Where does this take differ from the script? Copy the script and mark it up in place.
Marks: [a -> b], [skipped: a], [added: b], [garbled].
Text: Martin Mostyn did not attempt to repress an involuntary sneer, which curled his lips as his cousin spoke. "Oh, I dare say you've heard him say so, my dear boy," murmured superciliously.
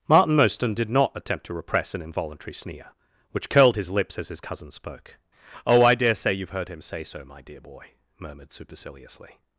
Martin Mostyn did not attempt to repress an involuntary sneer, which curled his lips as his cousin spoke. "Oh, I dare say you've heard him say so, my dear boy," murmured superciliously.